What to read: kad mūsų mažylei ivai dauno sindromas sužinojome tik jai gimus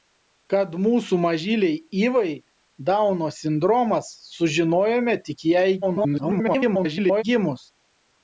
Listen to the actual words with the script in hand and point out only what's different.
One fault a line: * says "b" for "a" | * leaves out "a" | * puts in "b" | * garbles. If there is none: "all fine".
* garbles